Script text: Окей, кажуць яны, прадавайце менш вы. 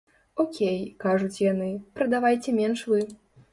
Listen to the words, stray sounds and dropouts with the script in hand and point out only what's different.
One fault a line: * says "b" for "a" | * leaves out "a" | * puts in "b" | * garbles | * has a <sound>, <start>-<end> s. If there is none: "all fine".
all fine